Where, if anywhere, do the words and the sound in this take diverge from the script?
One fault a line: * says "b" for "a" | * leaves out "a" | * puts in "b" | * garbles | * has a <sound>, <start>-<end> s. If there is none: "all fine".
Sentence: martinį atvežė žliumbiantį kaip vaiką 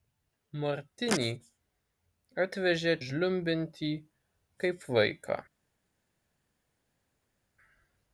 all fine